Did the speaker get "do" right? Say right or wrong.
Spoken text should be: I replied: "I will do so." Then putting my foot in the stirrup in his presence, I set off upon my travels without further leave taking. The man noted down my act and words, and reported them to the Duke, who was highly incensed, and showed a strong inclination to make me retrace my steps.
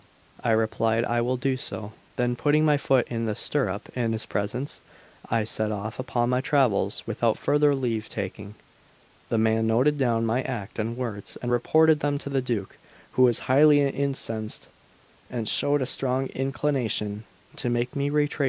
right